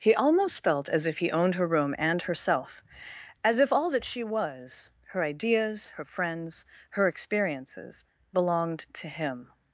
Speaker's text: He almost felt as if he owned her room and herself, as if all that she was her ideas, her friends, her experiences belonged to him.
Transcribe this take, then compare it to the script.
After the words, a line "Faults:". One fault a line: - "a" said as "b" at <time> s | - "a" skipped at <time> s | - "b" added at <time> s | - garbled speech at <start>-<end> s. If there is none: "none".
He almost felt as if he owned her room and herself, as if all that she was her ideas, her friends, her experiences belonged to him.
Faults:
none